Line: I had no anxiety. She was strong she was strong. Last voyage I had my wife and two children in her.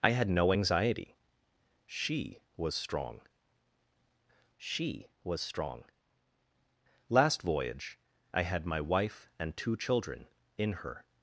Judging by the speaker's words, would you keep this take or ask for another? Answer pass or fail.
pass